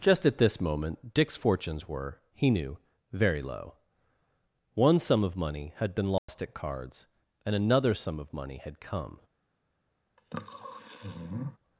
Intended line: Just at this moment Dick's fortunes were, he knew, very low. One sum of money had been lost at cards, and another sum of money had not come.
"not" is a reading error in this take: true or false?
true